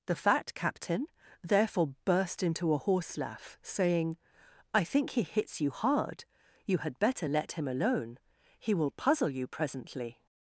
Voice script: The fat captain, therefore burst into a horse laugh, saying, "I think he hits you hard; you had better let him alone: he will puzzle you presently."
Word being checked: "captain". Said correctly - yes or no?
yes